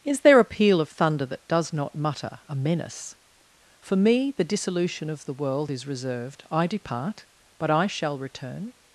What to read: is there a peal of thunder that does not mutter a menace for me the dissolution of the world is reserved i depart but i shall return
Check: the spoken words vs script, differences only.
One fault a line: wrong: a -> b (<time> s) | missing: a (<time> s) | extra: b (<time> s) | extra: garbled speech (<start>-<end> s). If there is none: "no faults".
no faults